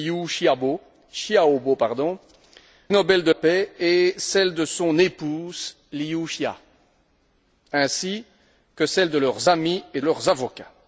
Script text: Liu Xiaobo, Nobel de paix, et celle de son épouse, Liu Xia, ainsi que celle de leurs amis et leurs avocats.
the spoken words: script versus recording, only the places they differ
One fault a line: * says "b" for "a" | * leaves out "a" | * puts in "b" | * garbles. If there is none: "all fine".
all fine